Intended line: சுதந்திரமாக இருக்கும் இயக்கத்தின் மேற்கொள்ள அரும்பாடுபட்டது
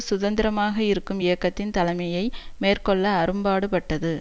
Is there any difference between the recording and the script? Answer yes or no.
yes